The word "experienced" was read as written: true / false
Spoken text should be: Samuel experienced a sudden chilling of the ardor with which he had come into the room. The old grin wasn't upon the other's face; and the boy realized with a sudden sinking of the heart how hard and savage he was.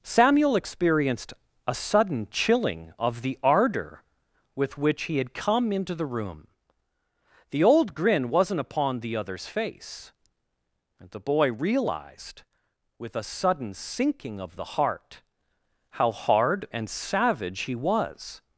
true